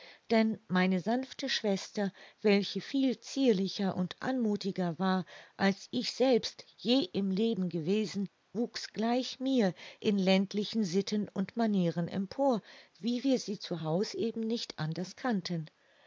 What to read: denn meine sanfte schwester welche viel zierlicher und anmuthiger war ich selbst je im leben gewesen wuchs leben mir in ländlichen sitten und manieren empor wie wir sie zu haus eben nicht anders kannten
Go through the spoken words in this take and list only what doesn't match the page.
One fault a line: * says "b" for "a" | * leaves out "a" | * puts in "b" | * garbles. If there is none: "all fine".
* puts in "als"
* says "gleich" for "leben"